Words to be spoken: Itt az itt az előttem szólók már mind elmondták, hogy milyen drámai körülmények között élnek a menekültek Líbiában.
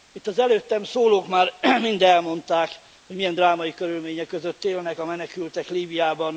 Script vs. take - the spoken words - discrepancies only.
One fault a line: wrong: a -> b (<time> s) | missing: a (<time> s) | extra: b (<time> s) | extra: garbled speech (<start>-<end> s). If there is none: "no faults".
missing: itt az (0.4 s)